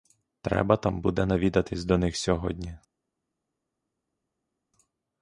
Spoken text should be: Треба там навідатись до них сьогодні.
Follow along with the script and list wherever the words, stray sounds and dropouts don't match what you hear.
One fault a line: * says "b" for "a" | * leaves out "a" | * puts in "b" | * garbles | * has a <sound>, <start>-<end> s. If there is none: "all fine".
* puts in "буде"